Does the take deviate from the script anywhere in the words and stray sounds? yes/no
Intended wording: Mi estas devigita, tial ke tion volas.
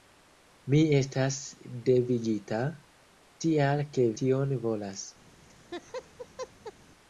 yes